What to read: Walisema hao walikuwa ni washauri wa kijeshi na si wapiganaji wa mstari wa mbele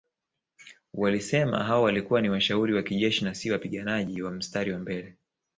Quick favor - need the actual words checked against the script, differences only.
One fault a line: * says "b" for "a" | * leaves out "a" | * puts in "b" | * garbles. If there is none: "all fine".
all fine